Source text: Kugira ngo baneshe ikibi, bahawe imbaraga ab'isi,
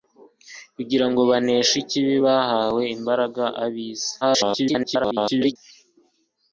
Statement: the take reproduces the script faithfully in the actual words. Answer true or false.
false